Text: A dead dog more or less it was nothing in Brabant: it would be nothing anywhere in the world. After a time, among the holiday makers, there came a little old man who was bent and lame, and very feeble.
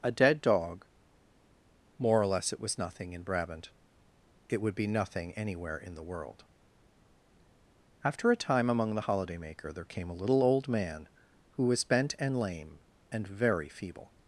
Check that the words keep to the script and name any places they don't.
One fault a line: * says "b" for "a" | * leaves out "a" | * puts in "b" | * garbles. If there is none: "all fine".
* says "maker" for "makers"